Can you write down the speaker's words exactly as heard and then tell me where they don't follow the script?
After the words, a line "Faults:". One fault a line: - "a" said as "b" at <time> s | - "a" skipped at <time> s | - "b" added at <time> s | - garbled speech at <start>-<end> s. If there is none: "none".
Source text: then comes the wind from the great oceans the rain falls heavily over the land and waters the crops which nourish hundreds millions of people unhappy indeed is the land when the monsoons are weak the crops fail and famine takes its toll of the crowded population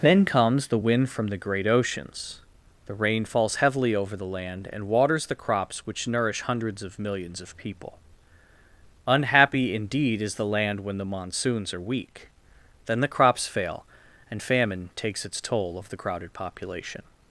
then comes the wind from the great oceans the rain falls heavily over the land and waters the crops which nourish hundreds of millions of people unhappy indeed is the land when the monsoons are weak then the crops fail and famine takes its toll of the crowded population
Faults:
- "of" added at 6.8 s
- "then" added at 12.9 s